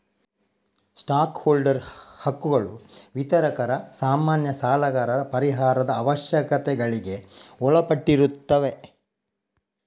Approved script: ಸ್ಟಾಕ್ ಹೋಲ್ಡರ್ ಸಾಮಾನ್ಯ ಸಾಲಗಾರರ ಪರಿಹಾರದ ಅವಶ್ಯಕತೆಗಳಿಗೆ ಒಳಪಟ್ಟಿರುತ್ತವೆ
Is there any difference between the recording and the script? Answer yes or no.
yes